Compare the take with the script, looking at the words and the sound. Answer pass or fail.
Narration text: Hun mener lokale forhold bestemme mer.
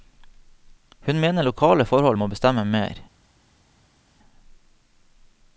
fail